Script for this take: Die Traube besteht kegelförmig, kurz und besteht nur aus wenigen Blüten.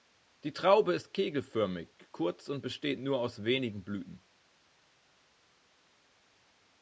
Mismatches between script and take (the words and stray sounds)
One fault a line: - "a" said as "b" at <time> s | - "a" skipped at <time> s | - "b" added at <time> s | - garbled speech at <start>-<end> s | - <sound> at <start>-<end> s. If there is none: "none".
- "besteht" said as "ist" at 0.9 s